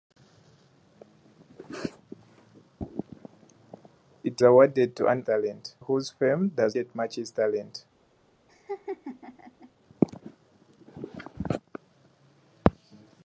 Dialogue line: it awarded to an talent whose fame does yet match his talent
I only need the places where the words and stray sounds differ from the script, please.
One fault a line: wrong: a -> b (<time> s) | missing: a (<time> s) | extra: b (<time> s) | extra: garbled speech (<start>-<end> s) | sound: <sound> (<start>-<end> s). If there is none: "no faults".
sound: laugh (8.5-9.7 s)